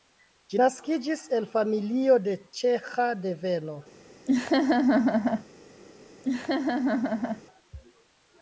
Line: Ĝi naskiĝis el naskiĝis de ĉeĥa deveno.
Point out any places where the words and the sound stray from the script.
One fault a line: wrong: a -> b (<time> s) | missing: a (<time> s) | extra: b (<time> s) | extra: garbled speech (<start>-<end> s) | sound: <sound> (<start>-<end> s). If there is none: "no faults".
wrong: naskiĝis -> familio (1.5 s)
sound: laugh (4.3-5.5 s)
sound: laugh (6.2-7.4 s)